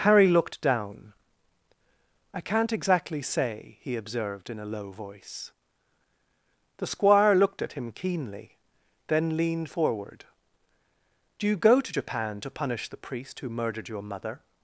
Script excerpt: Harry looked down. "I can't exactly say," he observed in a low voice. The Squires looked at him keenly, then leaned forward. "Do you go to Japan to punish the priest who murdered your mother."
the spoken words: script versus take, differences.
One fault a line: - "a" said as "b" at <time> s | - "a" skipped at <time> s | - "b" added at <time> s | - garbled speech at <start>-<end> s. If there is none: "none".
- "Squires" said as "Squire" at 6.9 s